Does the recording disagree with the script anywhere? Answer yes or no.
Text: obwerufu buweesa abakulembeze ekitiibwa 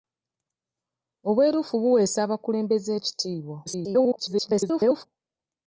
yes